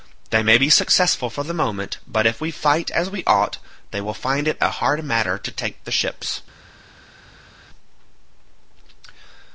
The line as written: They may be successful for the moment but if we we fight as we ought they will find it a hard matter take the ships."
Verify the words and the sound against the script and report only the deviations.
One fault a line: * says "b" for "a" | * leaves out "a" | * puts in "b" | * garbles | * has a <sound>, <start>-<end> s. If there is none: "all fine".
* leaves out "we"
* puts in "to"